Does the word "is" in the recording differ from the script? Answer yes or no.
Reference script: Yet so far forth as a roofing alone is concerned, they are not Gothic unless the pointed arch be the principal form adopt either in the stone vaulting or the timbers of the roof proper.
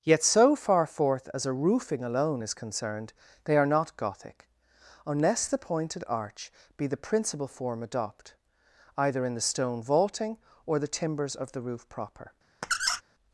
no